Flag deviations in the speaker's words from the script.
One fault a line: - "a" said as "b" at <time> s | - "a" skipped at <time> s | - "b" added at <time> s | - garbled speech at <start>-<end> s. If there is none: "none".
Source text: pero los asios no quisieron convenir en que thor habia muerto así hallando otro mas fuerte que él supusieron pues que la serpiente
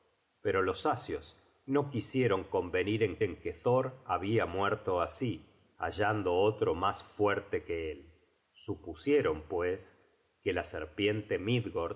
- "en" added at 3.2 s